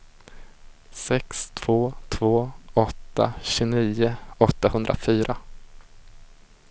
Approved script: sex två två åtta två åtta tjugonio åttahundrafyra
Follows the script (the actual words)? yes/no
no